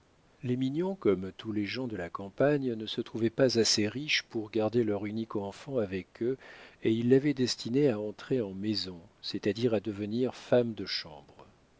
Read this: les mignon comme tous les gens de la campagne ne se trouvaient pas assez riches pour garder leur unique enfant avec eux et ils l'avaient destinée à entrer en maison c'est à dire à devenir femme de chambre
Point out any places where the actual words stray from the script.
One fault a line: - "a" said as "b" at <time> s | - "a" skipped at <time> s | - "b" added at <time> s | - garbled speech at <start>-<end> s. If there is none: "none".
none